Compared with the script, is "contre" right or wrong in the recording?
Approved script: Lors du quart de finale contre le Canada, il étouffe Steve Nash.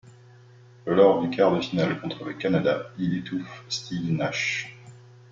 right